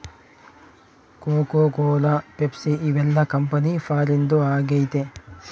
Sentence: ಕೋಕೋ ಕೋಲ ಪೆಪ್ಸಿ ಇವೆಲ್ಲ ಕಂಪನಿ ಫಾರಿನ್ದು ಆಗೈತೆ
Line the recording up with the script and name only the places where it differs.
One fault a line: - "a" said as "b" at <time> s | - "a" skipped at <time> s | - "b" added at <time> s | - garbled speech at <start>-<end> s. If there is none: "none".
none